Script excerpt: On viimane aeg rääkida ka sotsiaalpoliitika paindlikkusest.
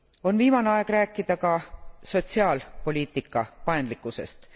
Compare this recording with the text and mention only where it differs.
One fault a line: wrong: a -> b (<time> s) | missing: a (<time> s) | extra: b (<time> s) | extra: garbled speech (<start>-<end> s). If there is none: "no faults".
no faults